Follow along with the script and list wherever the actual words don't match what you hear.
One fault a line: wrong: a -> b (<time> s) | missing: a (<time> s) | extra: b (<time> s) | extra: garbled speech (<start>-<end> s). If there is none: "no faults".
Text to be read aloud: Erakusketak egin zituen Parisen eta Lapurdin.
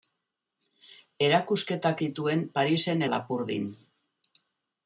missing: egin (2.0 s)
missing: eta (3.0 s)